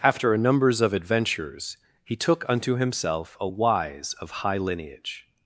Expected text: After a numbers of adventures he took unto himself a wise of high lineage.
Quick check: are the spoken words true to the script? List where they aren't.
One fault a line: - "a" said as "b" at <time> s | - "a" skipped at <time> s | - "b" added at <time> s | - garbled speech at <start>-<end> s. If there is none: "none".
none